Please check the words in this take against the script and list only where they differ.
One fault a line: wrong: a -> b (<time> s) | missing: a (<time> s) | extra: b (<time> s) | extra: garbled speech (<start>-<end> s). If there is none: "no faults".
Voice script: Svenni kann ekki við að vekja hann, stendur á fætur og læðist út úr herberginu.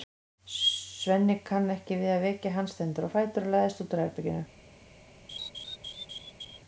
no faults